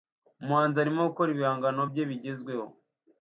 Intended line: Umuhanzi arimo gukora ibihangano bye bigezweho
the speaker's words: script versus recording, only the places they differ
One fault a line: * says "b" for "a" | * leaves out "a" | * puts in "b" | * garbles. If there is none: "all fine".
all fine